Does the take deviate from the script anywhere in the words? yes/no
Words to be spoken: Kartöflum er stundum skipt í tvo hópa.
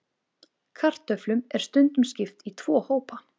no